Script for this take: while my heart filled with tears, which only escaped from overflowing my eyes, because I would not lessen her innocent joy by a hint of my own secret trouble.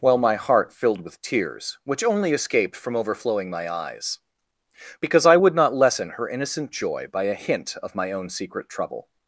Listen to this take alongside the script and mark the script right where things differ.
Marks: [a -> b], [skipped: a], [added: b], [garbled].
while my heart filled with tears, which only escaped from overflowing my eyes, because I would not lessen her innocent joy by a hint of my own secret trouble.